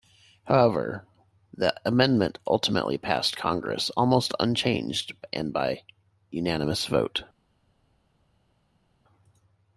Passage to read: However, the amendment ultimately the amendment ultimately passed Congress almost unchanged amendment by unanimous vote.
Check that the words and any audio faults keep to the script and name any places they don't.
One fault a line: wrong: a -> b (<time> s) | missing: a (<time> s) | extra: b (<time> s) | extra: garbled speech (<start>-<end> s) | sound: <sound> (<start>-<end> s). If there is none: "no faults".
missing: the amendment ultimately (3.0 s)
wrong: amendment -> and (5.3 s)